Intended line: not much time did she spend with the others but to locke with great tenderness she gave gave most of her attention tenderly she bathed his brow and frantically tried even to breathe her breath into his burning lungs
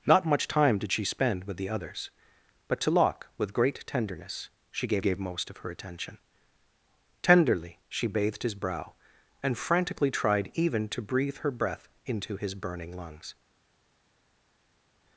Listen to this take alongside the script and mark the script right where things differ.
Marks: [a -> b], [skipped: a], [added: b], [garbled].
not much time did she spend with the others but to locke with great tenderness she gave gave most of her attention tenderly she bathed his brow and frantically tried even to breathe her breath into his burning lungs